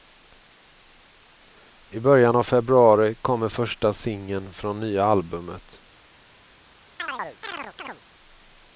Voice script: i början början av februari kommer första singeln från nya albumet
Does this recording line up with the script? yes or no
no